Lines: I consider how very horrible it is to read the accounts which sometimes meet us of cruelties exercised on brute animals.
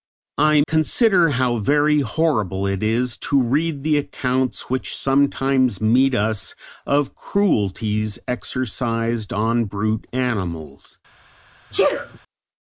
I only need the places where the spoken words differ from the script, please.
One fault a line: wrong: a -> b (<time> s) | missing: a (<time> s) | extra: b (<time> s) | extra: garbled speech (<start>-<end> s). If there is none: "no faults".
no faults